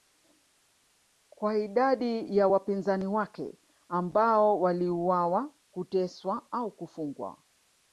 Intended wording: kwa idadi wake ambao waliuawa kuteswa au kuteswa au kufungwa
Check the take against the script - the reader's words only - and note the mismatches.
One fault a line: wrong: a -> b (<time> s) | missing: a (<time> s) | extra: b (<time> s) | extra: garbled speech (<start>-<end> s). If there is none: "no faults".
extra: ya wapinzani (2.4 s)
missing: kuteswa au (6.7 s)